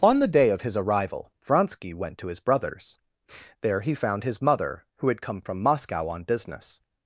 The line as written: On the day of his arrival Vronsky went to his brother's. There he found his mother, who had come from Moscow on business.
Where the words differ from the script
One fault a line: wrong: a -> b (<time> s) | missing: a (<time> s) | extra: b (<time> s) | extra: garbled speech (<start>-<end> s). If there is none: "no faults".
no faults